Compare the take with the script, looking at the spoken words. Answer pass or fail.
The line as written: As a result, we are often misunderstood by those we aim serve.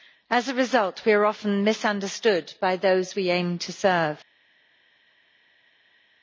fail